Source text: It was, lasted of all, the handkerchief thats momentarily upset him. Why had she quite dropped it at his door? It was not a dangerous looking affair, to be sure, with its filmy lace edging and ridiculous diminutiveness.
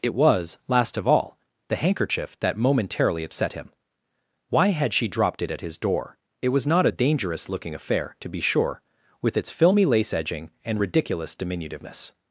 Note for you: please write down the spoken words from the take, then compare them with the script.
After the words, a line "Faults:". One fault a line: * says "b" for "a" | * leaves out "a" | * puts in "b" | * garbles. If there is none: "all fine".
It was, last of all, the handkerchief that momentarily upset him. Why had she dropped it at his door? It was not a dangerous looking affair, to be sure, with its filmy lace edging and ridiculous diminutiveness.
Faults:
* says "last" for "lasted"
* says "that" for "thats"
* leaves out "quite"